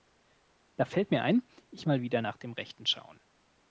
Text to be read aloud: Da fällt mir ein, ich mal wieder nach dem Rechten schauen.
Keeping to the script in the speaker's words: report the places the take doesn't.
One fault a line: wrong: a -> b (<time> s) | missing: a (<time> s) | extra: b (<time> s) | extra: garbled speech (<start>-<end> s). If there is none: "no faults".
no faults